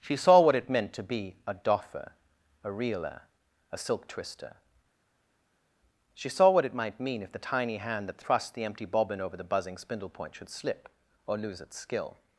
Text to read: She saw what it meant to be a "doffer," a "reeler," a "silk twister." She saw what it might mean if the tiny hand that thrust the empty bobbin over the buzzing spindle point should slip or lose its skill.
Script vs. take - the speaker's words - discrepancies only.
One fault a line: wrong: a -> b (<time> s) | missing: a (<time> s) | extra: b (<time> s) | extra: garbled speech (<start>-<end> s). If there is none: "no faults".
no faults